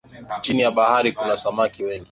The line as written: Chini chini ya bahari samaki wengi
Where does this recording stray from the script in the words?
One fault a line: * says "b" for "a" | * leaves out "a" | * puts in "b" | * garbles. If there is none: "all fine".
* leaves out "chini"
* puts in "kuna"